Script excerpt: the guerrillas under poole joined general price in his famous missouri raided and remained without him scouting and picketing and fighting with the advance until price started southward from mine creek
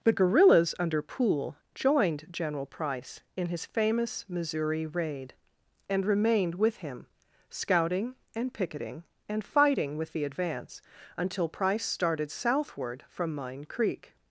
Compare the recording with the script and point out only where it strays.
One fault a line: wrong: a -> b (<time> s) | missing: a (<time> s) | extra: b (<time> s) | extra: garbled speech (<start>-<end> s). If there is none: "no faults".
wrong: raided -> raid (4.9 s)
wrong: without -> with (6.5 s)